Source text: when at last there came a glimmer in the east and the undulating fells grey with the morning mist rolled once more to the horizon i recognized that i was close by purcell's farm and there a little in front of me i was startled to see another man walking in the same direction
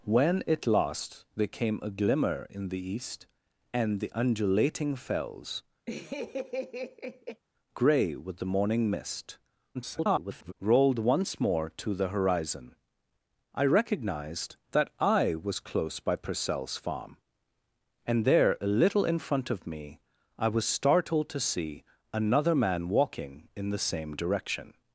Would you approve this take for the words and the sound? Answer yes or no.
no